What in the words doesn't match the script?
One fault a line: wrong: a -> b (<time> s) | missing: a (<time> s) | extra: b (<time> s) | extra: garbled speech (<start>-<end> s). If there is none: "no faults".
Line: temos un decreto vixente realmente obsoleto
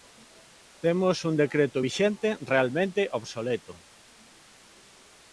no faults